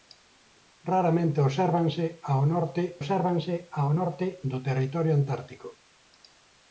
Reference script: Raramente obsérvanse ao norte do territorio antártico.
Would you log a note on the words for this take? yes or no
yes